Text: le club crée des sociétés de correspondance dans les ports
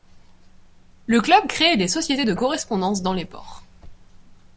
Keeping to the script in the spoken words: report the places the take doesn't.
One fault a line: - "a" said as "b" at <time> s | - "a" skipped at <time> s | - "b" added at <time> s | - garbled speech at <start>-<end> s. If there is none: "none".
none